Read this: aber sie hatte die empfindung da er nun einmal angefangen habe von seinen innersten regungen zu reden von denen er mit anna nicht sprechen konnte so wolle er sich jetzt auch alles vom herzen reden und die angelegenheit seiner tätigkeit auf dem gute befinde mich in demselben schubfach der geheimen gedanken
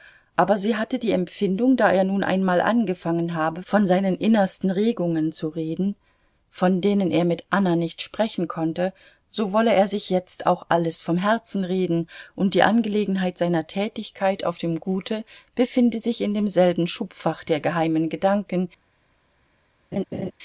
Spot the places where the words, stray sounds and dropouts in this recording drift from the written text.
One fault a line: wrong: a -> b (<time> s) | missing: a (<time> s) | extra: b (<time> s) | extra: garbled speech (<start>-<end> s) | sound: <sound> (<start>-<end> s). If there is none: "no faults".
wrong: mich -> sich (16.0 s)
sound: laugh (19.9-20.3 s)